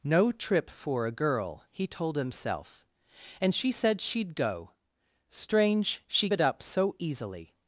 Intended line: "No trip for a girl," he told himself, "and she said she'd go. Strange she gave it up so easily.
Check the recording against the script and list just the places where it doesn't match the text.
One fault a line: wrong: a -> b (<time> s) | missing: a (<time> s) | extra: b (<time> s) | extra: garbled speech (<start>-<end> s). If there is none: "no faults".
missing: gave (6.3 s)